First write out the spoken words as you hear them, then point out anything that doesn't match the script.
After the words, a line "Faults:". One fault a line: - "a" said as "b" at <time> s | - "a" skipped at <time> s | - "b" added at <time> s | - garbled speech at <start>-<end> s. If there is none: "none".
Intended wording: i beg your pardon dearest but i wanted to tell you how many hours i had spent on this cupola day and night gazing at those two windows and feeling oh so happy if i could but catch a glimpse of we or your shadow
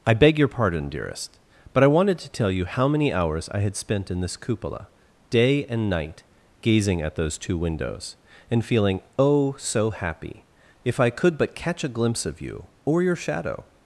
i beg your pardon dearest but i wanted to tell you how many hours i had spent in this cupola day and night gazing at those two windows and feeling oh so happy if i could but catch a glimpse of you or your shadow
Faults:
- "on" said as "in" at 4.1 s
- "we" said as "you" at 12.4 s